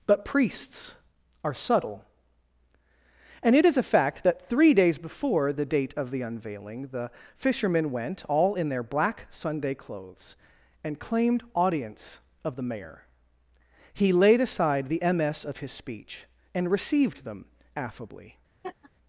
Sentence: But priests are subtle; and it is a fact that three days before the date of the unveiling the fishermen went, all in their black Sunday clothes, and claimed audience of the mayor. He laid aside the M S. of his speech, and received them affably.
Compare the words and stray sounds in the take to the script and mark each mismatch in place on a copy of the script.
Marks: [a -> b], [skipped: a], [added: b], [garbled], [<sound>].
But priests are subtle; and it is a fact that three days before the date of the unveiling the fishermen went, all in their black Sunday clothes, and claimed audience of the mayor. He laid aside the M S. of his speech, and received them affably. [laugh]